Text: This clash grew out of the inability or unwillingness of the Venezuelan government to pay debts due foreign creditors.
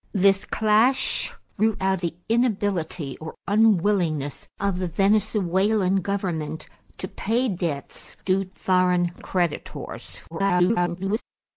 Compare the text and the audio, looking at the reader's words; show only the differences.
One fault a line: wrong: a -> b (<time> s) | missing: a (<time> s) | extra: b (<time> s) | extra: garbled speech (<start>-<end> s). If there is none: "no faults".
missing: of (2.0 s)
extra: garbled speech (10.3-11.2 s)